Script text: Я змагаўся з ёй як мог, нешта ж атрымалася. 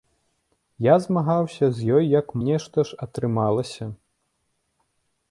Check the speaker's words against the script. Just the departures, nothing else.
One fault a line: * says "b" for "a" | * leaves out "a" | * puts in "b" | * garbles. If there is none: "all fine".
* leaves out "мог"